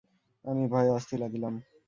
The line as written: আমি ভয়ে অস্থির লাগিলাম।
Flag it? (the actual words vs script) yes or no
no